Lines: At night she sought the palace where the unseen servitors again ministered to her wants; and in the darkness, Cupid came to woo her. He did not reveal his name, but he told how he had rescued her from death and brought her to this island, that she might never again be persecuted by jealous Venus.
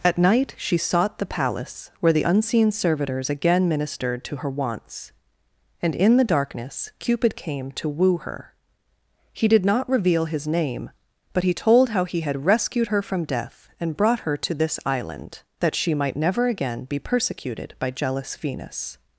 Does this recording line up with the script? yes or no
yes